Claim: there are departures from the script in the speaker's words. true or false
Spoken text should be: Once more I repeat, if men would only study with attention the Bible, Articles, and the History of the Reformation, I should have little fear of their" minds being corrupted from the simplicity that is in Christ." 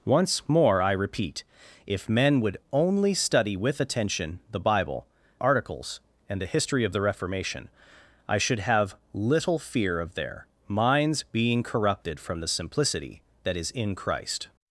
false